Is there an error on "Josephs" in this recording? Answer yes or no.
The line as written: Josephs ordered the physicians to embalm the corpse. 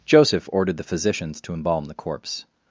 yes